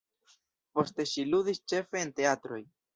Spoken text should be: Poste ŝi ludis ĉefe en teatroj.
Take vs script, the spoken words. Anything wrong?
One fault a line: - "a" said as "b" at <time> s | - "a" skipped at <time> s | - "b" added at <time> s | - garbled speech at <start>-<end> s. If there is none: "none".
none